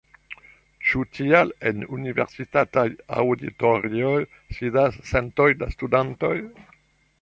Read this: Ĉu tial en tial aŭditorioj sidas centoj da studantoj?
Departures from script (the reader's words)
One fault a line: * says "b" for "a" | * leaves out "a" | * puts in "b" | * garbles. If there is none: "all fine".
* says "universitataj" for "tial"